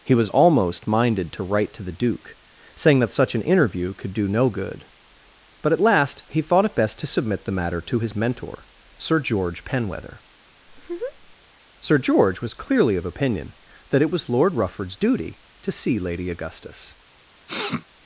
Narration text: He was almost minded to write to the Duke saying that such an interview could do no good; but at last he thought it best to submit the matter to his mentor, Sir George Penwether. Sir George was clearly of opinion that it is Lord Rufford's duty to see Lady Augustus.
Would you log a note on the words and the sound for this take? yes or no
yes